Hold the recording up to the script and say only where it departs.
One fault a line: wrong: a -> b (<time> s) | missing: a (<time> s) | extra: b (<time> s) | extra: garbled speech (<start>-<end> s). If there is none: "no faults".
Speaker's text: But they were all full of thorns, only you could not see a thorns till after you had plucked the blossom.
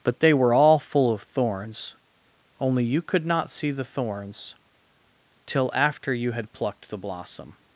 wrong: a -> the (3.7 s)